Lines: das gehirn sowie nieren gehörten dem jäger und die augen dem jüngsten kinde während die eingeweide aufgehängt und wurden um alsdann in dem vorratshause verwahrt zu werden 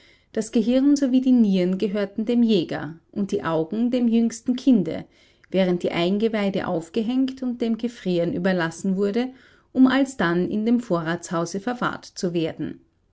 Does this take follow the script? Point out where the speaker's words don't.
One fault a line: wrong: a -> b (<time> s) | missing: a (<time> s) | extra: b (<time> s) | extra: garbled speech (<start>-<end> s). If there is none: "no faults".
extra: die (1.2 s)
extra: dem gefrieren überlassen (7.6 s)